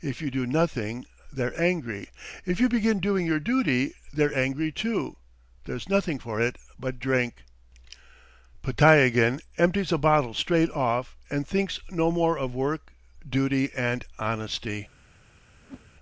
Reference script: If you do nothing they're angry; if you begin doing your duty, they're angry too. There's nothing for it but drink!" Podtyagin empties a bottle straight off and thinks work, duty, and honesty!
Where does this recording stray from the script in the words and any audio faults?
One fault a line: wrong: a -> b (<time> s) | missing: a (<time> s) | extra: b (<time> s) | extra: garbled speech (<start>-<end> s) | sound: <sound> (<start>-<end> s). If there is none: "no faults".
extra: no more of (11.9 s)
sound: whoosh (15.6-15.9 s)